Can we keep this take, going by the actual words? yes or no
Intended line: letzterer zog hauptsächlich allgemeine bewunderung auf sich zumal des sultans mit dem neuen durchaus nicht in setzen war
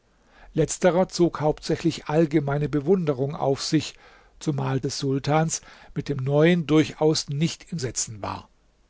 yes